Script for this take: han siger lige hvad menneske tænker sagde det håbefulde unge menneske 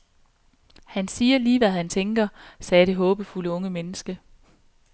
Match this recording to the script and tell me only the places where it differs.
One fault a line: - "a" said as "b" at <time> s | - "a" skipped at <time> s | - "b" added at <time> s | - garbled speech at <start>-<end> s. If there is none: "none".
- "menneske" said as "han" at 1.7 s